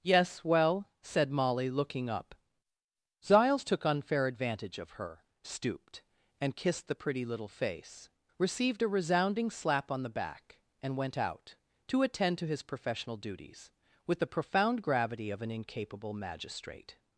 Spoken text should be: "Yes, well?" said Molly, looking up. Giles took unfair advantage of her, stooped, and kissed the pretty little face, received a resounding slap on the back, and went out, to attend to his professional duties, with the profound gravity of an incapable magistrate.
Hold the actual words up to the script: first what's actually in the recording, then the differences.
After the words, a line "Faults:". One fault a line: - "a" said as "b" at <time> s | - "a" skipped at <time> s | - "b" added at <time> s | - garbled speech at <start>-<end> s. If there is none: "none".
"Yes, well?" said Molly, looking up. Giles took unfair advantage of her, stooped, and kissed the pretty little face, received a resounding slap on the back, and went out, to attend to his professional duties, with the profound gravity of an incapable magistrate.
Faults:
none